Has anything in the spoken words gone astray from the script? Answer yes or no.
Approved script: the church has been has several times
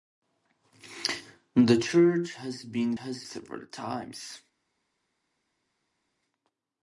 no